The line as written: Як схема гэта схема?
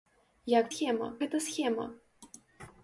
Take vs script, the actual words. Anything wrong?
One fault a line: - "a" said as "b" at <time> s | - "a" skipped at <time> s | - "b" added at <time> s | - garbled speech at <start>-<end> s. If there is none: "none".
none